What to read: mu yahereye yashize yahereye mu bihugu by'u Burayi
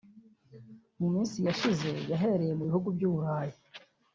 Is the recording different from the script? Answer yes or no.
yes